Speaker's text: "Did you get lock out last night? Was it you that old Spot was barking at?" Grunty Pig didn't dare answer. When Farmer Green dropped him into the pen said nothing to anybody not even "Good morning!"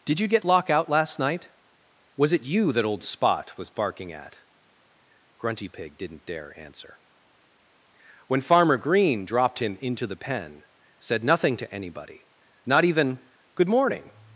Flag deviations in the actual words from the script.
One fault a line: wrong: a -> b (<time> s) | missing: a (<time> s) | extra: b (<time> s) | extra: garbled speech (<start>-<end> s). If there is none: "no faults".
no faults